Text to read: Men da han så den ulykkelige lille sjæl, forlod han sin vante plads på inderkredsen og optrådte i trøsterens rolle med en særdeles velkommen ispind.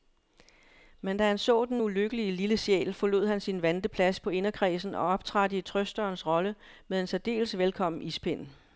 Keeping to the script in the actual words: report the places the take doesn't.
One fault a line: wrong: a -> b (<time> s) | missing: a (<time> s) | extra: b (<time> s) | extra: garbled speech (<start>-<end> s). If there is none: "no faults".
no faults